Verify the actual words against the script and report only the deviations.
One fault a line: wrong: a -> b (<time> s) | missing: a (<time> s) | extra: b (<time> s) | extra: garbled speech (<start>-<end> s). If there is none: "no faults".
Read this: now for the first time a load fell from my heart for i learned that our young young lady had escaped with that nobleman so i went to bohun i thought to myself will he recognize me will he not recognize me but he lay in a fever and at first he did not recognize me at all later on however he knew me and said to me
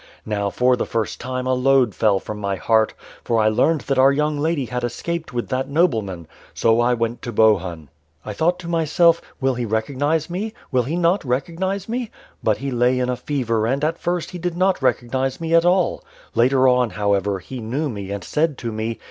missing: young (4.4 s)